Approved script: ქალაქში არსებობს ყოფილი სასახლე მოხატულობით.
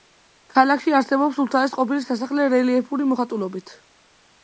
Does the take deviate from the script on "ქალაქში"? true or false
false